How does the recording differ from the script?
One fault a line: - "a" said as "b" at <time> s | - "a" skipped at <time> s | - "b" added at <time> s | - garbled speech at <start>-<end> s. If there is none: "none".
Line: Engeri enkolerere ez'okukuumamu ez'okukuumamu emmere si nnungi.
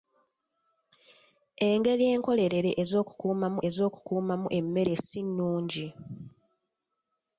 none